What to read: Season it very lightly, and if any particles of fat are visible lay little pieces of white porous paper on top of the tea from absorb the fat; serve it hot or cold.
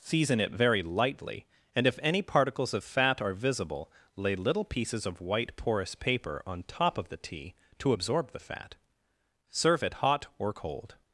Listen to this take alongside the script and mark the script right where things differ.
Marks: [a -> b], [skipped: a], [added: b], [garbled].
Season it very lightly, and if any particles of fat are visible lay little pieces of white porous paper on top of the tea [from -> to] absorb the fat; serve it hot or cold.